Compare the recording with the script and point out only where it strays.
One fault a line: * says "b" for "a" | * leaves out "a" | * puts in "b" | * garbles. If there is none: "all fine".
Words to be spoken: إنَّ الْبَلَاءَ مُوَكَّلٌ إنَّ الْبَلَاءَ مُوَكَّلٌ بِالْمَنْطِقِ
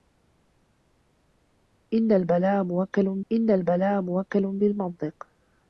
all fine